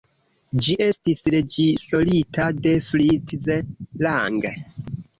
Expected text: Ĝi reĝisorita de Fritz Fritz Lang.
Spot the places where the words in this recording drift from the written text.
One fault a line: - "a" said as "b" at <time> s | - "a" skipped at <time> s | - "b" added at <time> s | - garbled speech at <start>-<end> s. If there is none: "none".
- "estis" added at 0.9 s
- "Fritz" skipped at 3.5 s